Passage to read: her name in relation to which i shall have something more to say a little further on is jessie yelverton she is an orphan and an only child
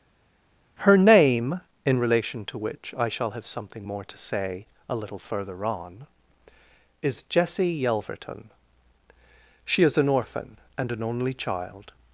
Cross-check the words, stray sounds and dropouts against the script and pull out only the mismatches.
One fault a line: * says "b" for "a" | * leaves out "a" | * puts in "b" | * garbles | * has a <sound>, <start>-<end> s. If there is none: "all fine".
all fine